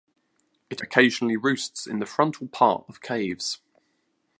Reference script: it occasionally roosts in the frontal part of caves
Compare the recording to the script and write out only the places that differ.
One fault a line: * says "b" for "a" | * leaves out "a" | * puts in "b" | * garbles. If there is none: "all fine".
all fine